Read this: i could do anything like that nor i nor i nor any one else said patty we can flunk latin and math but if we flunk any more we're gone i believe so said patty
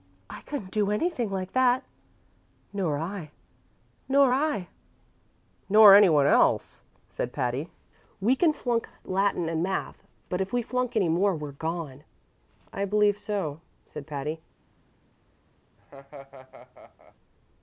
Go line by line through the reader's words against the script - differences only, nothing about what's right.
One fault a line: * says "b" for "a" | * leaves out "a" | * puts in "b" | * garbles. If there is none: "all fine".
* says "couldn't" for "could"